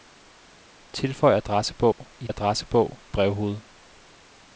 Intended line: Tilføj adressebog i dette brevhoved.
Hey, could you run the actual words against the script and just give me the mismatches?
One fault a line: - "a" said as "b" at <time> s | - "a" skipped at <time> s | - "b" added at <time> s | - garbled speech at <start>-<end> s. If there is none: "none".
- "dette" said as "adressebog" at 2.3 s